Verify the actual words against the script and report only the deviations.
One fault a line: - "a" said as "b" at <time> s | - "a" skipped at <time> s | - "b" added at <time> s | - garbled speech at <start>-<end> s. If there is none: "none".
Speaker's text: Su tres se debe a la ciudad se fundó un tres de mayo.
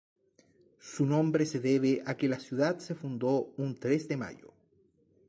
- "tres" said as "nombre" at 1.1 s
- "que" added at 2.2 s